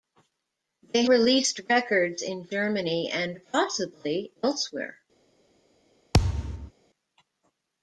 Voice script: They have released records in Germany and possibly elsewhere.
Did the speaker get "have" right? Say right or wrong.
wrong